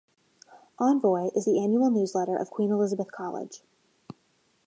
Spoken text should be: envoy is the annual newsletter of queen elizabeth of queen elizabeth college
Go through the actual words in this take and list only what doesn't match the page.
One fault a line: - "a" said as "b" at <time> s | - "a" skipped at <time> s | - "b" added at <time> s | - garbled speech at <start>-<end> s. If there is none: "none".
- "of queen elizabeth" skipped at 3.1 s